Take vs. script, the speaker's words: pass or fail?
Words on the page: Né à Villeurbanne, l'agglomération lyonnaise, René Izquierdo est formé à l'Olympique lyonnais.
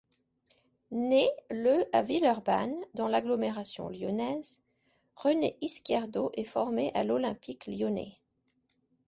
fail